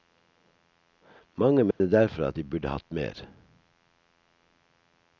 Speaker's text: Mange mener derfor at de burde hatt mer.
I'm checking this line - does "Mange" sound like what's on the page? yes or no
yes